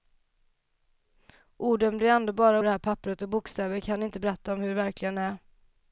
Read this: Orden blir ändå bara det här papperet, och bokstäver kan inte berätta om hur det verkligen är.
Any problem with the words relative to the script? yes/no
no